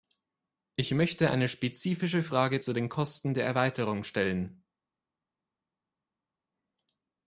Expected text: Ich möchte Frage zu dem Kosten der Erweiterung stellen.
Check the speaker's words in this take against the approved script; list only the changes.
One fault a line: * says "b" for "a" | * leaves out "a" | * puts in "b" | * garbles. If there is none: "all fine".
* puts in "eine spezifische"
* says "den" for "dem"